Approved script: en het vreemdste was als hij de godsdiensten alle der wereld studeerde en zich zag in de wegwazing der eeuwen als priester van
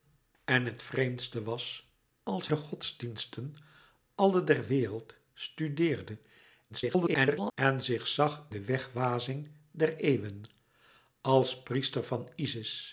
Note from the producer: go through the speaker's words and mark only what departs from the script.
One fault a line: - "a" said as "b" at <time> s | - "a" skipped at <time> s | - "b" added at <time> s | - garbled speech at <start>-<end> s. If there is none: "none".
- "hij" skipped at 2.5 s
- garbled speech at 6.7-7.5 s
- "in" skipped at 8.5 s